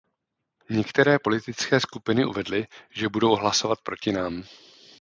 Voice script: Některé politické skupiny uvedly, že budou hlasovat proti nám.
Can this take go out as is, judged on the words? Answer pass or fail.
pass